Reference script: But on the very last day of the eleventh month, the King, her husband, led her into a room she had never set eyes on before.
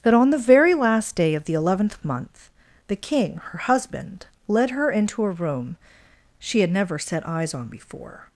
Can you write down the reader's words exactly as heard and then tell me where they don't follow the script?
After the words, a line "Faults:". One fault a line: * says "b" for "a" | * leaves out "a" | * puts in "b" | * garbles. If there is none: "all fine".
That on the very last day of the eleventh month, the King, her husband, led her into a room she had never set eyes on before.
Faults:
* says "That" for "But"